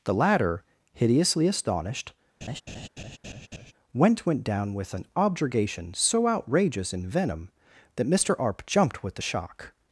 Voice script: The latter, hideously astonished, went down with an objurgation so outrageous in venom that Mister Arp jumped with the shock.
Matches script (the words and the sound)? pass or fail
fail